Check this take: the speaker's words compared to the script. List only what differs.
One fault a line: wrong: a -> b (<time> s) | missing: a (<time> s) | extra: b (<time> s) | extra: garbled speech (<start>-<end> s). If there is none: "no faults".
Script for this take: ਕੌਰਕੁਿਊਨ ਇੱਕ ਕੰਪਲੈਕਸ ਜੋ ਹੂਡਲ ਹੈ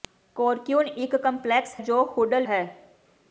no faults